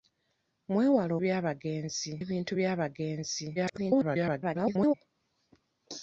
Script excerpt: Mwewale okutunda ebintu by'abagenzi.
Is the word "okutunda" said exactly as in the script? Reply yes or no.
no